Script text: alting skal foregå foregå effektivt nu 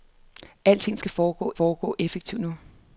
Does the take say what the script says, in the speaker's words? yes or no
yes